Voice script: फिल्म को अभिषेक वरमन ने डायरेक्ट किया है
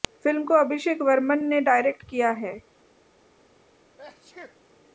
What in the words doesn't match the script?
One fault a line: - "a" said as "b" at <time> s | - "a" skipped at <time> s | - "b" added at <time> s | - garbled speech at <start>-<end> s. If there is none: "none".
none